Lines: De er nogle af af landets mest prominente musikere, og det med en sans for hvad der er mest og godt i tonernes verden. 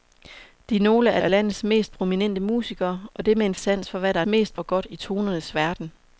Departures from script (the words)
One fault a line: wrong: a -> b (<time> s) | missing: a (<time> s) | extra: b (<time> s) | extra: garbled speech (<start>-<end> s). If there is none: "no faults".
no faults